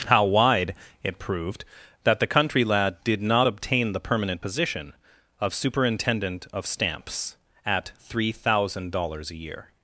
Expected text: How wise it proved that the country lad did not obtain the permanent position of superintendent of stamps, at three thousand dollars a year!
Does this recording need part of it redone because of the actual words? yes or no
yes